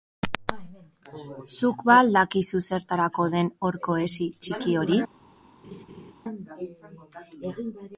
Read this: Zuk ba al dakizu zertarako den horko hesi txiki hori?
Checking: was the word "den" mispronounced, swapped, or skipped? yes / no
no